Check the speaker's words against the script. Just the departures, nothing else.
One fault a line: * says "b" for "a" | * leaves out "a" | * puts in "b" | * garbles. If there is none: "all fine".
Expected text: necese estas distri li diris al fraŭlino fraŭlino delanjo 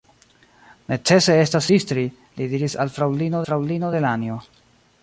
all fine